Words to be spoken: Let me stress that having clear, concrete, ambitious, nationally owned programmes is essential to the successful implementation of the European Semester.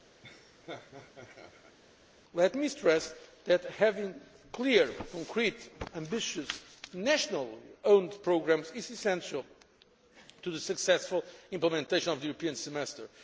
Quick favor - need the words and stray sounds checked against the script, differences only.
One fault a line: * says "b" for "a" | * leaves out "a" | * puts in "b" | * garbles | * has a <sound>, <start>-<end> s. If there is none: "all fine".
* has a laugh, 0.2-1.8 s